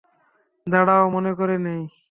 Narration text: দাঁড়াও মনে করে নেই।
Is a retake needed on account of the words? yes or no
no